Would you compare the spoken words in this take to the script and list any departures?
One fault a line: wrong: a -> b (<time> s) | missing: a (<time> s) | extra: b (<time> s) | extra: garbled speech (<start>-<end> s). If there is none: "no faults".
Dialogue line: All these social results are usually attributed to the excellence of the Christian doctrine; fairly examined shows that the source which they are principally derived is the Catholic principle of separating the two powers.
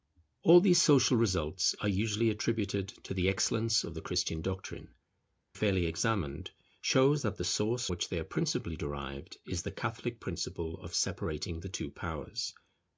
no faults